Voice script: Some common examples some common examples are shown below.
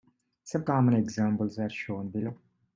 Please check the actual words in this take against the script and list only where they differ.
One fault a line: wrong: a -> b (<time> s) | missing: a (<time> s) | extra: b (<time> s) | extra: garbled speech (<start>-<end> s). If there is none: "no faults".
missing: some common examples (1.6 s)